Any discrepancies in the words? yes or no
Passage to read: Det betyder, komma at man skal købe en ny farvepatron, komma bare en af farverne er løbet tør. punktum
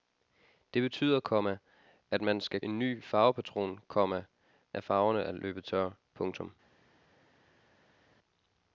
yes